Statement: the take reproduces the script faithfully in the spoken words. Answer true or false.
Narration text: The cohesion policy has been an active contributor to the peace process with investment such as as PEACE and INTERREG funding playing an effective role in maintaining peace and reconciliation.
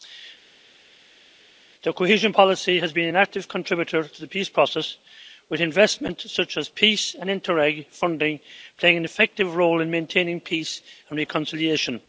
false